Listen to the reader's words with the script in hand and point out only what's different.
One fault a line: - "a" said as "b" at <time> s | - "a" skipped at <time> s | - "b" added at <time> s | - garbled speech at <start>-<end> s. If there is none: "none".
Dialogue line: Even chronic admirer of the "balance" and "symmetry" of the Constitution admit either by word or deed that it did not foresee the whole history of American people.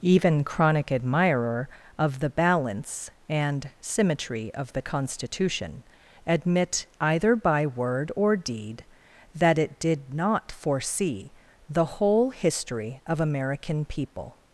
none